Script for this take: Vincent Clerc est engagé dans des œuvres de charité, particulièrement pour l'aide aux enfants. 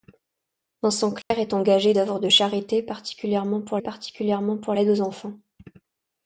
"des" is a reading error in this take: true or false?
true